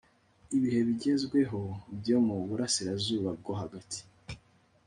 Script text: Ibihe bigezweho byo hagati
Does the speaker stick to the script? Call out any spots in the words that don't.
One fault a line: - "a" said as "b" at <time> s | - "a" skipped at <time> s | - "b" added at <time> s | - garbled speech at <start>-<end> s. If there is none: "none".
- "mu burasirazuba bwo" added at 2.2 s